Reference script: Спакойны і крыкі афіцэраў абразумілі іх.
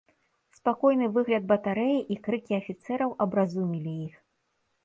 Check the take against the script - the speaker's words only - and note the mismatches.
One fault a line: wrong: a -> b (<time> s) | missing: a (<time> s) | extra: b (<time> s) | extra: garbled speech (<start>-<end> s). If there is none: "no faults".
extra: выгляд батарэі (1.2 s)